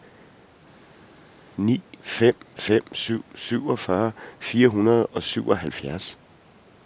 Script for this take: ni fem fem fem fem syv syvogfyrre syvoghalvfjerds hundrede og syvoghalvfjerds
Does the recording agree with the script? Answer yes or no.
no